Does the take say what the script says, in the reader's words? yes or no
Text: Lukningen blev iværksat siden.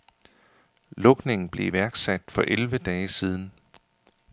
no